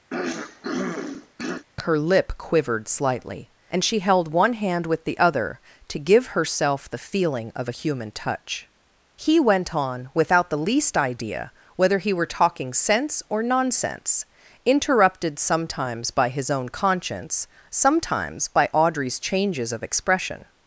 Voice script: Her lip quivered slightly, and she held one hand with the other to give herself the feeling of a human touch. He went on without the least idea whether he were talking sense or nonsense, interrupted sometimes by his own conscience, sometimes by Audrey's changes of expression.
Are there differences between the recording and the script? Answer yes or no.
no